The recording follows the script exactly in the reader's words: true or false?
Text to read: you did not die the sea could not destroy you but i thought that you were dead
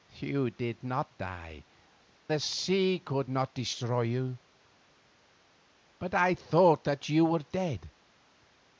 true